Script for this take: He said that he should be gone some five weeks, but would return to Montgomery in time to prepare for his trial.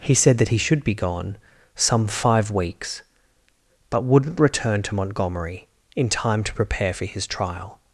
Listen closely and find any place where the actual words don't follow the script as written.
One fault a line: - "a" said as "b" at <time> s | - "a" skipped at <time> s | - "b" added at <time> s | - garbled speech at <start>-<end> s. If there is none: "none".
- "would" said as "wouldn't" at 4.0 s